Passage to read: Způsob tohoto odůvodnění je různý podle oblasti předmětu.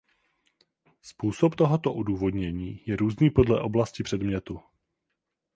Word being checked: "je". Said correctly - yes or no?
yes